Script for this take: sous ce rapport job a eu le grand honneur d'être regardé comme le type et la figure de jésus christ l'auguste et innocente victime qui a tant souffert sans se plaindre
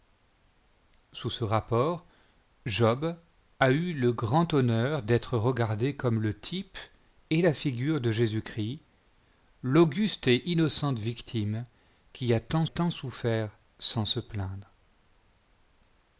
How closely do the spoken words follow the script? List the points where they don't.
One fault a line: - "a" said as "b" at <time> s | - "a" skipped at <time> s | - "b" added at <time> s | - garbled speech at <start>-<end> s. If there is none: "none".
- "tant" added at 12.7 s